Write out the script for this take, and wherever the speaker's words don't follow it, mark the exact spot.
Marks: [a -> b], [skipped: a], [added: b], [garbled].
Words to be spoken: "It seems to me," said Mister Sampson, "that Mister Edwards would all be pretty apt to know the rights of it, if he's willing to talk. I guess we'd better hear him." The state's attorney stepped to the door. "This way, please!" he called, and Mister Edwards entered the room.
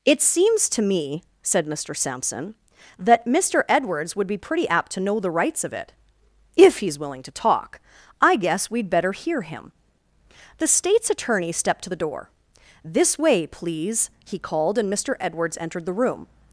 "It seems to me," said Mister Sampson, "that Mister Edwards would [skipped: all] be pretty apt to know the rights of it, if he's willing to talk. I guess we'd better hear him." The state's attorney stepped to the door. "This way, please!" he called, and Mister Edwards entered the room.